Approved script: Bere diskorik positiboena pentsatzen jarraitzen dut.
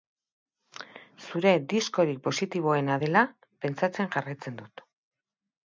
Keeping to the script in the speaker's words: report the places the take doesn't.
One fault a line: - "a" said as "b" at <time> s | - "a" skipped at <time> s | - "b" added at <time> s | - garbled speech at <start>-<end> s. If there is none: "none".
- "Bere" said as "Zure" at 1.2 s
- "dela" added at 3.1 s